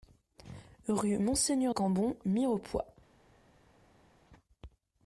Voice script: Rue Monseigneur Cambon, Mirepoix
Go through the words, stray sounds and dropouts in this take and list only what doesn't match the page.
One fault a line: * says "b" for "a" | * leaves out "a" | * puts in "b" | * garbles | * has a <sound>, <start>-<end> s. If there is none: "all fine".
all fine